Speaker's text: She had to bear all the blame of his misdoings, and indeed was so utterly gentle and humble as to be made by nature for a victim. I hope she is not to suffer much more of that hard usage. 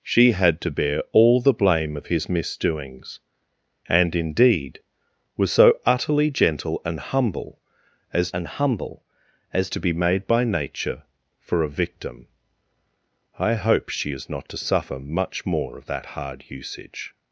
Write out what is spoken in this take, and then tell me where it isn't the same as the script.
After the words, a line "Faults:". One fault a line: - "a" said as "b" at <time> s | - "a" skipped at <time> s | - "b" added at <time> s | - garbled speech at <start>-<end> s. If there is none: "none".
She had to bear all the blame of his misdoings, and indeed was so utterly gentle and humble as and humble as to be made by nature for a victim. I hope she is not to suffer much more of that hard usage.
Faults:
- "and humble as" added at 8.3 s